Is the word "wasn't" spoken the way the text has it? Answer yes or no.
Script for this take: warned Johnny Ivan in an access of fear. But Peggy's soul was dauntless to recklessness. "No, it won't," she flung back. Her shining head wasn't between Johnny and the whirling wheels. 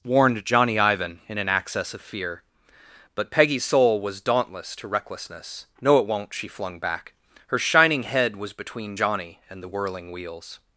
no